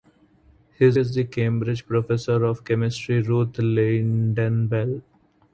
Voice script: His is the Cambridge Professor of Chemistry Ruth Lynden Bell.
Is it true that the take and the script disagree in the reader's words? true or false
false